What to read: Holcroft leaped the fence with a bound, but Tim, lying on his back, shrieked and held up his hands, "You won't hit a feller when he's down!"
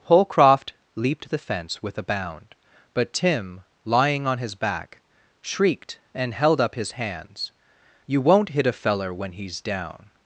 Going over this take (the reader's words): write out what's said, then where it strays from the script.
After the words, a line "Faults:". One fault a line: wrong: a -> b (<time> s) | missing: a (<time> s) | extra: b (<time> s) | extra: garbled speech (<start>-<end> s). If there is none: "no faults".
Holcroft leaped the fence with a bound, but Tim, lying on his back, shrieked and held up his hands, "You won't hit a feller when he's down!"
Faults:
no faults